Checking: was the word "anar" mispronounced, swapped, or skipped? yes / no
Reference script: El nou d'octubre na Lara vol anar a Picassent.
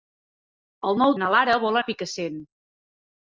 yes